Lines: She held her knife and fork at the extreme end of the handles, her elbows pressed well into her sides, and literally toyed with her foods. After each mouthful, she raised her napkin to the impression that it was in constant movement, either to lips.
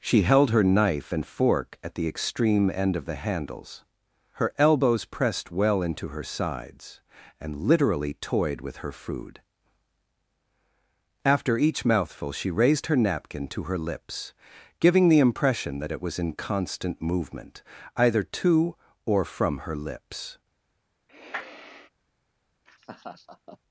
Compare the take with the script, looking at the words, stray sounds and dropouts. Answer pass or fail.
fail